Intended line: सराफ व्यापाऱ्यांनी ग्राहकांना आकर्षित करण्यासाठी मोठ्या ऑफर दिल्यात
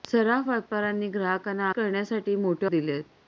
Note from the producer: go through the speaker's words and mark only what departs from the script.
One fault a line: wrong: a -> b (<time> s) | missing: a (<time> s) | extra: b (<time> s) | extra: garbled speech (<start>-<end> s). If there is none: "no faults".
missing: आकर्षित (1.7 s)
missing: ऑफर (2.7 s)